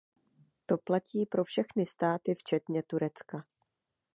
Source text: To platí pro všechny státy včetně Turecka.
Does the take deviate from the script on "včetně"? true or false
false